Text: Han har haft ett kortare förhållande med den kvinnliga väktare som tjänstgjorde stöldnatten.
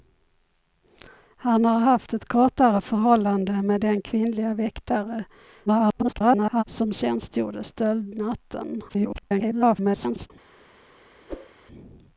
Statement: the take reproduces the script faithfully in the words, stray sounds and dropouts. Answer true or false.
false